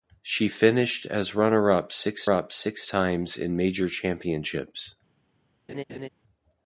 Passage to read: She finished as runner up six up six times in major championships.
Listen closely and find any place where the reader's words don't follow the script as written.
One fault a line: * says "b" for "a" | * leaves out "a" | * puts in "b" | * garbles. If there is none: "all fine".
all fine